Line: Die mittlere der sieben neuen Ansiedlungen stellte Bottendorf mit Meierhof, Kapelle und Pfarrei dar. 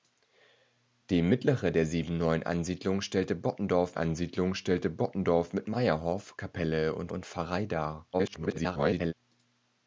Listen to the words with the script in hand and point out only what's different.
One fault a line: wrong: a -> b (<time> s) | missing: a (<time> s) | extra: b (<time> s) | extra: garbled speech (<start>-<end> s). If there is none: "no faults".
extra: Ansiedlungen stellte Bottendorf (3.9 s)
extra: und (7.1 s)
extra: garbled speech (8.1-9.1 s)